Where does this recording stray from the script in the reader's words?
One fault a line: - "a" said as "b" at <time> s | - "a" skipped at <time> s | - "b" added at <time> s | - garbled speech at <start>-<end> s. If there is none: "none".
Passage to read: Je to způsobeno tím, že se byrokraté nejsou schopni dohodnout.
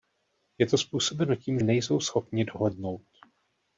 - "že se byrokraté" skipped at 1.6 s